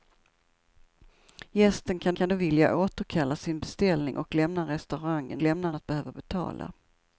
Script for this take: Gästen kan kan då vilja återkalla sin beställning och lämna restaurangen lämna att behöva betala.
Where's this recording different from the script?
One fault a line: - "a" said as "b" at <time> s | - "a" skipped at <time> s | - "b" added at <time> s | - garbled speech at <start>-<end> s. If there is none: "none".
none